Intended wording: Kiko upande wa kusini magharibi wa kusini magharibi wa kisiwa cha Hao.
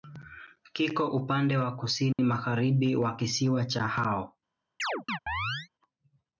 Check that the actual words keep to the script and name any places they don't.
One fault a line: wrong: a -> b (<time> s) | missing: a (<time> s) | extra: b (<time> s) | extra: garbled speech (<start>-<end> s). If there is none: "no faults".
missing: kusini magharibi wa (3.2 s)